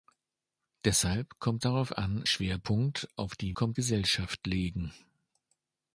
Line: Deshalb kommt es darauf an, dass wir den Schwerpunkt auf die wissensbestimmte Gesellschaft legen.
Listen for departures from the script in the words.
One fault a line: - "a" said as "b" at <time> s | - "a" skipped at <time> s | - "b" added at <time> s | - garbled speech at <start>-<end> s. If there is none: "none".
- "es" skipped at 1.6 s
- "dass wir den" skipped at 2.2 s
- "wissensbestimmte" said as "kommt" at 3.5 s